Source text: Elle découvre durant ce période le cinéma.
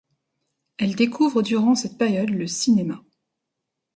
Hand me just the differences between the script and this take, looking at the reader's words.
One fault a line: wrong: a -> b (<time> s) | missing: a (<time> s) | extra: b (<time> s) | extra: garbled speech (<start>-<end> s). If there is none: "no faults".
wrong: ce -> cette (1.8 s)